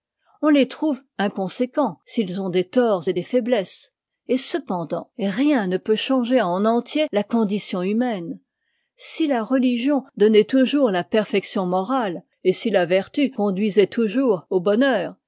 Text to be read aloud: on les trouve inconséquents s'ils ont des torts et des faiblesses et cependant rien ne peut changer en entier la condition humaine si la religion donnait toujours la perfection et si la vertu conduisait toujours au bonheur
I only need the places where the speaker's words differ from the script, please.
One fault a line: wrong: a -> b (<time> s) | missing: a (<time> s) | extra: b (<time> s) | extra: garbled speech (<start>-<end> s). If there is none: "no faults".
extra: morale (11.7 s)